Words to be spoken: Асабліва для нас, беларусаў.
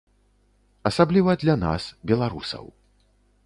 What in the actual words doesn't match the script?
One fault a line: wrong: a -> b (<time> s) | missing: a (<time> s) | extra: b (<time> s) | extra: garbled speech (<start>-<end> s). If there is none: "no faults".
no faults